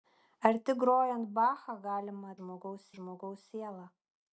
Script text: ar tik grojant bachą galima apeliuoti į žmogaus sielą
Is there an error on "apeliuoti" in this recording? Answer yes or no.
yes